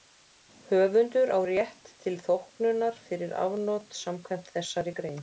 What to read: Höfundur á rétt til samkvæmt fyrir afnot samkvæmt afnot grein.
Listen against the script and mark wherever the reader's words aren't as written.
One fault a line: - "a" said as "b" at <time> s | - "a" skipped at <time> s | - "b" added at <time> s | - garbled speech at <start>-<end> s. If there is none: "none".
- "samkvæmt" said as "þóknunar" at 2.3 s
- "afnot" said as "þessari" at 4.5 s